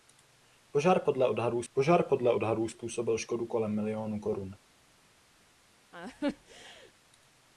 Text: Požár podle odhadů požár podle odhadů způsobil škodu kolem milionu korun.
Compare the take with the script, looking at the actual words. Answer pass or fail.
pass